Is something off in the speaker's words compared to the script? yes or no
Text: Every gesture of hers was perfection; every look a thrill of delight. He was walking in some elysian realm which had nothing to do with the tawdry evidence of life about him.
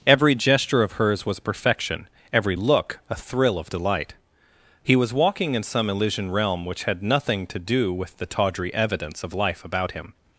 no